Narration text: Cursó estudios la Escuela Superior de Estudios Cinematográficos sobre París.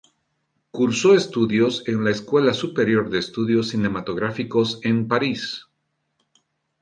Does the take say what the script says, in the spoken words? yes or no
no